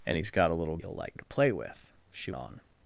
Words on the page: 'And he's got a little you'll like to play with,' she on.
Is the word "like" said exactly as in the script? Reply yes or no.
yes